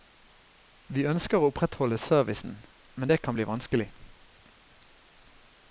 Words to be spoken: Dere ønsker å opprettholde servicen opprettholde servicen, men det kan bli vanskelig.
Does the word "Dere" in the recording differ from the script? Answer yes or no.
yes